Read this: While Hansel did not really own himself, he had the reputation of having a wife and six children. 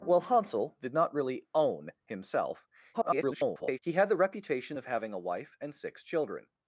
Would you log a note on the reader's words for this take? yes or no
yes